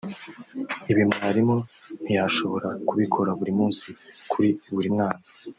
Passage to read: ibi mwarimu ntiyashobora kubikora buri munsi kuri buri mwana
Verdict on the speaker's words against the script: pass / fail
pass